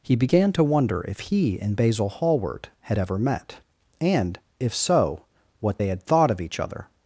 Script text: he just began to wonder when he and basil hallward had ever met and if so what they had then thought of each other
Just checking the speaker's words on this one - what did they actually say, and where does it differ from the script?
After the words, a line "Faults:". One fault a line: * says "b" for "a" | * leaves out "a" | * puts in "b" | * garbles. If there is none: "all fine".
he began to wonder if he and basil hallward had ever met and if so what they had thought of each other
Faults:
* leaves out "just"
* says "if" for "when"
* leaves out "then"